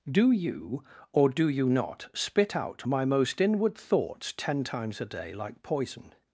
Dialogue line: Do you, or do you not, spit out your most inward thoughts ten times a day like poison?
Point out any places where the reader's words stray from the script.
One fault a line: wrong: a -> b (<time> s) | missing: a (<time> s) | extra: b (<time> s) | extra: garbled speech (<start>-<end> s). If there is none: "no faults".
wrong: your -> my (2.9 s)